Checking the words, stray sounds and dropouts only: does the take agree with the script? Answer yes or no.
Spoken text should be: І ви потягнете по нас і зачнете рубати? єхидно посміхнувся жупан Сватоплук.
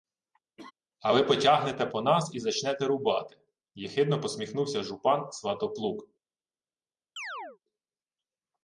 no